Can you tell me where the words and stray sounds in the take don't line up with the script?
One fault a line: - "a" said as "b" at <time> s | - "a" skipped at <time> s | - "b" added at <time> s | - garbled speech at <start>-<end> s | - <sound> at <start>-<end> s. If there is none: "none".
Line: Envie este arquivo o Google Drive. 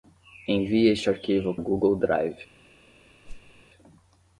- whoosh at 3.2-3.6 s